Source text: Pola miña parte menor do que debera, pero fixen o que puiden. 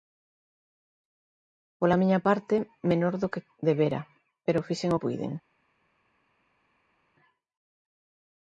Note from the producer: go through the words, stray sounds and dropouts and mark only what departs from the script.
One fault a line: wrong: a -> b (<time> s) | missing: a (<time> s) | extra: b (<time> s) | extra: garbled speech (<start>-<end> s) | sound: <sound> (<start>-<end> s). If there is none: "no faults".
missing: que (5.0 s)